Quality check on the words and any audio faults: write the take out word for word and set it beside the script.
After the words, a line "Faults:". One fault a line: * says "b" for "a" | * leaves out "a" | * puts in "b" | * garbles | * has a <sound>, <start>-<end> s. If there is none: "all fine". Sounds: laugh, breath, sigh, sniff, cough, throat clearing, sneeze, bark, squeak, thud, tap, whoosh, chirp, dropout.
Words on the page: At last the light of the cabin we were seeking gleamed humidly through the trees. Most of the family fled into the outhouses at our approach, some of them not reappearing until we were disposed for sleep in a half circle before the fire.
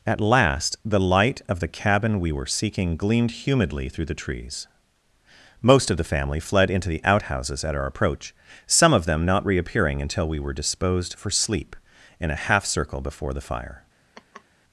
At last the light of the cabin we were seeking gleamed humidly through the trees. Most of the family fled into the outhouses at our approach, some of them not reappearing until we were disposed for sleep in a half circle before the fire.
Faults:
* has a laugh, 14.1-14.4 s